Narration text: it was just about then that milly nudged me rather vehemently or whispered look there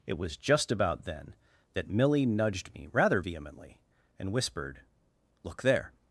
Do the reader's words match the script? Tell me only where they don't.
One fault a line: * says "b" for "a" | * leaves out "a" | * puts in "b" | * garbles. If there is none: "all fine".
* says "and" for "or"